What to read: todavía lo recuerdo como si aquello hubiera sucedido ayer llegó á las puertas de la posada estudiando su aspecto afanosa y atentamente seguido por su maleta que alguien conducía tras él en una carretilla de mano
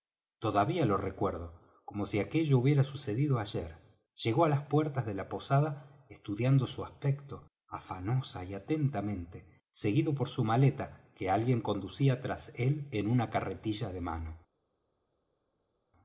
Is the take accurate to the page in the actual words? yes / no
yes